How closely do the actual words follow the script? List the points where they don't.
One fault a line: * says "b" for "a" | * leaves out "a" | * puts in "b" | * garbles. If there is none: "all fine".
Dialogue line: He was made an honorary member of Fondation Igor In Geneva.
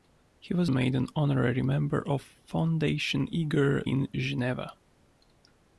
all fine